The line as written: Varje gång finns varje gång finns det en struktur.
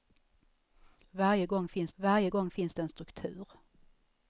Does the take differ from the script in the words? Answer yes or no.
no